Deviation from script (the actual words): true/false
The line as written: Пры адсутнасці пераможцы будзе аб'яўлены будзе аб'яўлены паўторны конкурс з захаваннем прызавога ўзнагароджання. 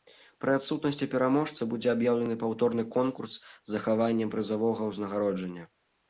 true